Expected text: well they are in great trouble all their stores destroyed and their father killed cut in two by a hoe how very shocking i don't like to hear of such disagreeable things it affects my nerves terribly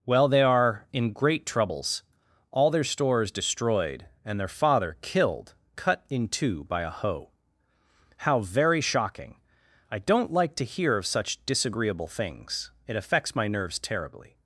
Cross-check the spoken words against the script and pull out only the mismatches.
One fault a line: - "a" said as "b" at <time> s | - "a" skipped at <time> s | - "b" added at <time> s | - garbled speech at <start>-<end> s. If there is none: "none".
- "trouble" said as "troubles" at 1.4 s